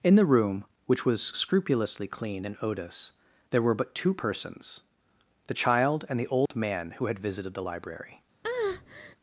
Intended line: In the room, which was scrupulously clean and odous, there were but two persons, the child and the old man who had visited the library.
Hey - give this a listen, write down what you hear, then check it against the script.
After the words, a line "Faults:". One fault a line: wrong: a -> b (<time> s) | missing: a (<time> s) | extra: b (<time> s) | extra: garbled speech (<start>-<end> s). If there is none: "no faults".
In the room, which was scrupulously clean and odous, there were but two persons, the child and the old man who had visited the library.
Faults:
no faults